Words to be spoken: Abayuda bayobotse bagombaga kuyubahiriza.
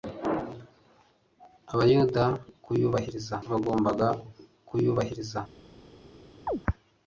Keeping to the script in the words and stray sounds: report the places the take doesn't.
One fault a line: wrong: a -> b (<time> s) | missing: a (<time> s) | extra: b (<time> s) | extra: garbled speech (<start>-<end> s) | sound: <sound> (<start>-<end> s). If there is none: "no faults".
wrong: bayobotse -> kuyubahiriza (2.6 s)
sound: chirp (6.5-6.6 s)